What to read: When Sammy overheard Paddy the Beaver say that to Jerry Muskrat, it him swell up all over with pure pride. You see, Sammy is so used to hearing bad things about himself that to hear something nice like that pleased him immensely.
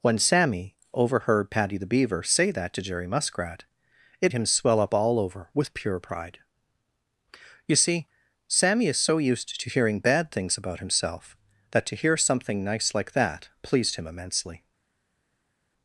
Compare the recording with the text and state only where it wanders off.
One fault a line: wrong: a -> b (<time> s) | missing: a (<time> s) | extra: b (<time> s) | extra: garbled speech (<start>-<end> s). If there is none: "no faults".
no faults